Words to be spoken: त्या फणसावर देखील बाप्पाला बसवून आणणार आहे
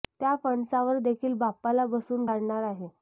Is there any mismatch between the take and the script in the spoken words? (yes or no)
no